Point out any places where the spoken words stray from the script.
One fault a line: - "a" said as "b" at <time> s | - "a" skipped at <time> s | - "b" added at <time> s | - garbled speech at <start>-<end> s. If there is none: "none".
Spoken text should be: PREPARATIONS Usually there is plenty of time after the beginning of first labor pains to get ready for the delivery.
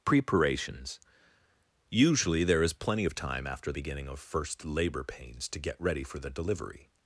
- "the" skipped at 3.7 s